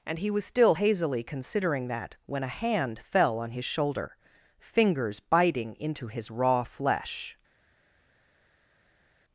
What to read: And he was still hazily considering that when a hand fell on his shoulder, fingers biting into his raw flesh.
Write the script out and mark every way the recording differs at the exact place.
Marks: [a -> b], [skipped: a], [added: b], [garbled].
And he was still hazily considering that when a hand fell on his shoulder, fingers biting into his raw flesh.